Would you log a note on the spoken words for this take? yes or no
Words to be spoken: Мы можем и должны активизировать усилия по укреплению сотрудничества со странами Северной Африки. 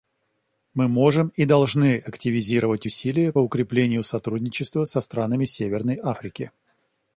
yes